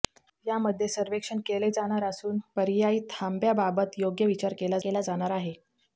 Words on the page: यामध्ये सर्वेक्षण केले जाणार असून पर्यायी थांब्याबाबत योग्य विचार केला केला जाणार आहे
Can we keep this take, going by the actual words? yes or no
yes